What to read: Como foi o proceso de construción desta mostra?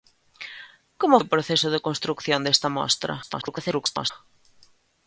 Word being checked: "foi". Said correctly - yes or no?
no